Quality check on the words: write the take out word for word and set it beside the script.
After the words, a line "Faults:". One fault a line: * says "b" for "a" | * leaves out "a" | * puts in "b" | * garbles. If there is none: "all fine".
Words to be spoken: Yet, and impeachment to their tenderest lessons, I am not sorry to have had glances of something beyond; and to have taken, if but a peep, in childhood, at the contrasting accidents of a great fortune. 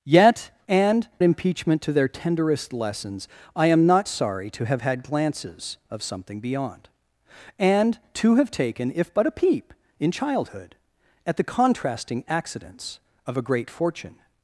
Yet, and impeachment to their tenderest lessons, I am not sorry to have had glances of something beyond; and to have taken, if but a peep, in childhood, at the contrasting accidents of a great fortune.
Faults:
all fine